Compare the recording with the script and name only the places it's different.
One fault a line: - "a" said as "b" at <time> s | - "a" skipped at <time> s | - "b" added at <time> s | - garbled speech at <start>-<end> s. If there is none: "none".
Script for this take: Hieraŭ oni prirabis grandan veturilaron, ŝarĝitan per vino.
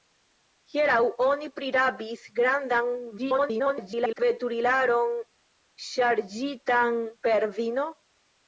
- garbled speech at 3.2-4.2 s